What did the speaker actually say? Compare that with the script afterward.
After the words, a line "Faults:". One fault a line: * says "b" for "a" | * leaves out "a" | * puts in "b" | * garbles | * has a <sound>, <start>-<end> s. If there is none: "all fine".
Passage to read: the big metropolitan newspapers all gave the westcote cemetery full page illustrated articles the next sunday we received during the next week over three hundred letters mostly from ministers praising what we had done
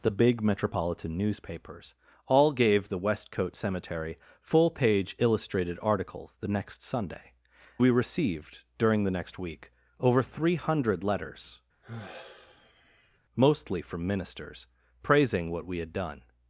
the big metropolitan newspapers all gave the westcote cemetery full page illustrated articles the next sunday we received during the next week over three hundred letters mostly from ministers praising what we had done
Faults:
* has a sigh, 11.8-13.2 s